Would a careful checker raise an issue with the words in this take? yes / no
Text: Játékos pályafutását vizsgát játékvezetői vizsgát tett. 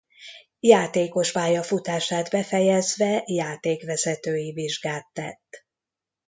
yes